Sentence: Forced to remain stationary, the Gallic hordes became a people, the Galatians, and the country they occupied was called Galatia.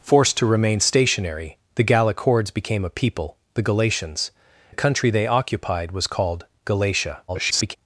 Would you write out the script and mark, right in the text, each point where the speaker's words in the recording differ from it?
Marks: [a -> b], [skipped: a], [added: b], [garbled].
Forced to remain stationary, the Gallic hordes became a people, the Galatians, [skipped: and] the country they occupied was called Galatia. [garbled]